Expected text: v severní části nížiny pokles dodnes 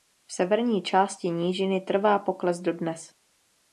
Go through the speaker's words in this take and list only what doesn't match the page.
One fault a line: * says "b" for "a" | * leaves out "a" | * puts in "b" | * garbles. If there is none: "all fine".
* puts in "trvá"